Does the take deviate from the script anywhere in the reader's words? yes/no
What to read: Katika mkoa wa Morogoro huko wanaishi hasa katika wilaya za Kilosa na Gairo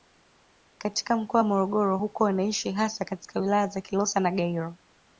no